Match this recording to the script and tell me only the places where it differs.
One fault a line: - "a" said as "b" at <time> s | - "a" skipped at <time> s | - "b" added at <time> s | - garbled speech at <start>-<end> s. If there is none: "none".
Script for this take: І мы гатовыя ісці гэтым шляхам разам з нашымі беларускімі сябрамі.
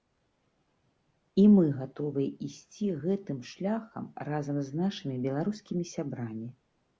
none